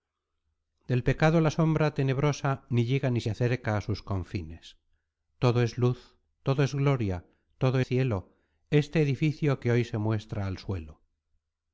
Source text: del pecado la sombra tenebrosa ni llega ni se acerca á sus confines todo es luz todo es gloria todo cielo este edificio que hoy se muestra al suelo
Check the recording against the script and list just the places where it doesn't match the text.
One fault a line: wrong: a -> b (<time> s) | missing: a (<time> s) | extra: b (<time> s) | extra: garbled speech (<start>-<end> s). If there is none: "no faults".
no faults